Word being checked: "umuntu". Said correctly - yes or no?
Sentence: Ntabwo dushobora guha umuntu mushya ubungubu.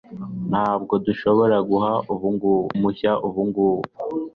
no